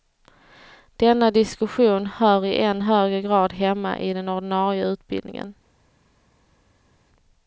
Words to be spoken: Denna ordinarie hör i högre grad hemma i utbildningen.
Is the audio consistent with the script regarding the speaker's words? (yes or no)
no